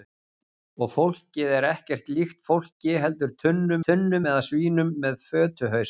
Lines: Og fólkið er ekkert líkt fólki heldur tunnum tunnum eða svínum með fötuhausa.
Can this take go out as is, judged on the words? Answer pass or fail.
pass